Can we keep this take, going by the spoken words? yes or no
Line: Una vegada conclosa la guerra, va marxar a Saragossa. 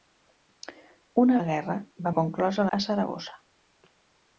no